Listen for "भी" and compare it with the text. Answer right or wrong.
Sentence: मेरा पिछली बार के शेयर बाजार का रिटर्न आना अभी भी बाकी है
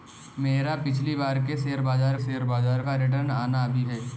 wrong